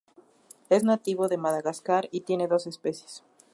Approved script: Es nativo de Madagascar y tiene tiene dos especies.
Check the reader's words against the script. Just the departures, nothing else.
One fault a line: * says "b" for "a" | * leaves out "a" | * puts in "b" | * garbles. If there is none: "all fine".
* leaves out "tiene"